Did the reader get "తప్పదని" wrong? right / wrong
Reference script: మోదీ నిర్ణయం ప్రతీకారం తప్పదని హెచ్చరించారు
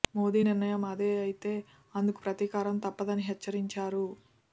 right